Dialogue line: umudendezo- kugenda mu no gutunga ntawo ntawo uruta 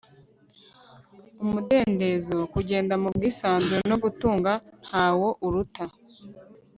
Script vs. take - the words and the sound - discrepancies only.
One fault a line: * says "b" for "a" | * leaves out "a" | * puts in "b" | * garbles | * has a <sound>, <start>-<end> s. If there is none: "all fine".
* puts in "bwisanzure"
* leaves out "ntawo"